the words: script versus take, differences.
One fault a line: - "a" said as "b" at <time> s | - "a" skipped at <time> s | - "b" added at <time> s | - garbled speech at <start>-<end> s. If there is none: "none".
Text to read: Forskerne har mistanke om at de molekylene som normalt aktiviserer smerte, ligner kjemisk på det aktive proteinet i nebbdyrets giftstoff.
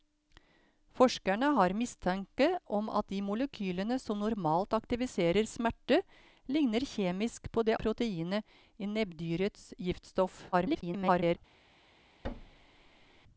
- "aktive" skipped at 7.8 s
- garbled speech at 10.5-11.4 s